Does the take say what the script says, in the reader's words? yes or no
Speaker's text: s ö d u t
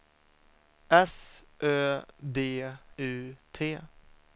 yes